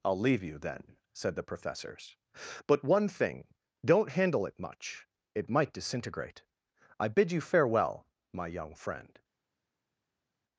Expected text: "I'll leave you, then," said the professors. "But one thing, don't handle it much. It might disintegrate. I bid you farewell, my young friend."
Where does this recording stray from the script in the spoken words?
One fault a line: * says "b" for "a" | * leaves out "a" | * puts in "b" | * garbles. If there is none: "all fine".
all fine